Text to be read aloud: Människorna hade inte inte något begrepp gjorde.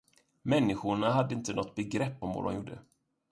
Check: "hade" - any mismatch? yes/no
no